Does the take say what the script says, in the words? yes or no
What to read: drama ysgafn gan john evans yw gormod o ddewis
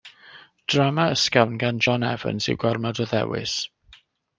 yes